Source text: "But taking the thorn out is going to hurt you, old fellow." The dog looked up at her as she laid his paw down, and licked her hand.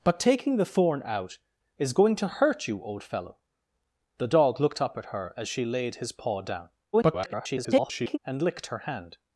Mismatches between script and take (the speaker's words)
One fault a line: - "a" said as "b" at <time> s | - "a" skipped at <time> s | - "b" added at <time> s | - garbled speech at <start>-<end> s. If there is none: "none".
- garbled speech at 6.9-8.2 s